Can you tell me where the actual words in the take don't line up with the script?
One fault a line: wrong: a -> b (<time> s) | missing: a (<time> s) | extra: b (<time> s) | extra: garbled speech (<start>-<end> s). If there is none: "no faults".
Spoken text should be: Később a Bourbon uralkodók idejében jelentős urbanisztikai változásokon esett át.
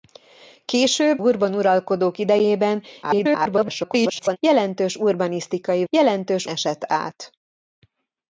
missing: a (1.2 s)
extra: garbled speech (3.0-4.4 s)
wrong: változásokon -> jelentős (5.9 s)